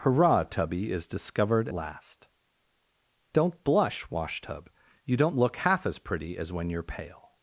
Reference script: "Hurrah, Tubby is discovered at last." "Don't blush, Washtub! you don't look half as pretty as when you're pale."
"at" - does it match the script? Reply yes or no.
no